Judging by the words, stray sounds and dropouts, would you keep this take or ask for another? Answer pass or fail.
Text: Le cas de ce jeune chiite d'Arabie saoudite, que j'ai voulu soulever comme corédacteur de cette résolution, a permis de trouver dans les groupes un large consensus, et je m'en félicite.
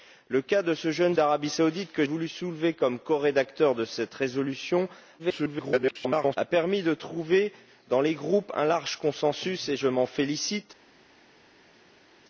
fail